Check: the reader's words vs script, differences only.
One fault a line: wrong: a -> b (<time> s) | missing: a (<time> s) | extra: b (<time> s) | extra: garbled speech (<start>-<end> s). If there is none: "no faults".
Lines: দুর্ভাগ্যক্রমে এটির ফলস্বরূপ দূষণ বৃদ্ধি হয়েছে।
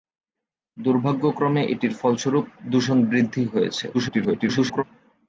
extra: garbled speech (3.9-4.8 s)